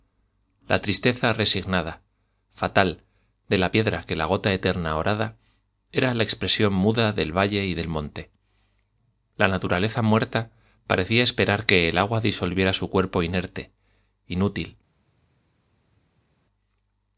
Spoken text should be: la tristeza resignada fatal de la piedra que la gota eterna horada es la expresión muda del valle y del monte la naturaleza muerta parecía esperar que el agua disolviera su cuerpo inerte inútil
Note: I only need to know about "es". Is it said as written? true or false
false